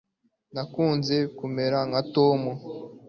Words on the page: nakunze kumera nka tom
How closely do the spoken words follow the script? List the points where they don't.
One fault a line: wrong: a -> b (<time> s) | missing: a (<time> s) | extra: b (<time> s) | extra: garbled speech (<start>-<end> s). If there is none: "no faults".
no faults